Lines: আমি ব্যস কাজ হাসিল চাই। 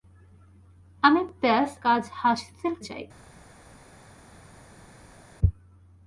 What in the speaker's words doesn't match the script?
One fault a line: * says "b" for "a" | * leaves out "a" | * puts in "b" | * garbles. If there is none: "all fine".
all fine